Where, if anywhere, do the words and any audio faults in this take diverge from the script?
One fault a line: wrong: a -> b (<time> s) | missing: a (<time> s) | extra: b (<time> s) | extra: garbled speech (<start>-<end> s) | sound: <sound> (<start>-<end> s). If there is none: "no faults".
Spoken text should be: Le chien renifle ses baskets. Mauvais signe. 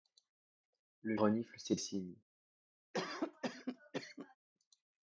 missing: chien (1.1 s)
missing: baskets Mauvais (1.8 s)
sound: cough (2.9-4.4 s)